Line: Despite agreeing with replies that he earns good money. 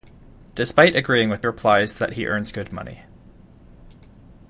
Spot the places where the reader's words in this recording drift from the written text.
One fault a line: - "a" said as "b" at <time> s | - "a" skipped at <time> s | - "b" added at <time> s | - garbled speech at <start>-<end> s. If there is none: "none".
none